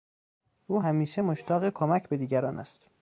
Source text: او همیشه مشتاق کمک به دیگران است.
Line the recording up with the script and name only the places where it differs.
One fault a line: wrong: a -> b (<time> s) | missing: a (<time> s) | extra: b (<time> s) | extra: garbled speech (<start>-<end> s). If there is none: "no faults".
no faults